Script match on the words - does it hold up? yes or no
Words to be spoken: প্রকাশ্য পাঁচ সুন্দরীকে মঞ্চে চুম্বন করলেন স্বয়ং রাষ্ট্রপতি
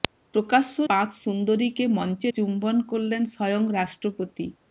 yes